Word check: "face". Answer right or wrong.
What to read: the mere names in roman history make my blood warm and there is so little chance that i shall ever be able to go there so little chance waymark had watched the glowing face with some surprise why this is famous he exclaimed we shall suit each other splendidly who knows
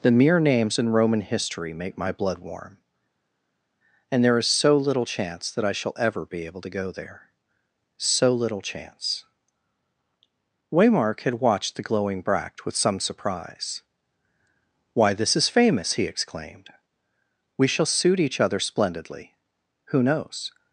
wrong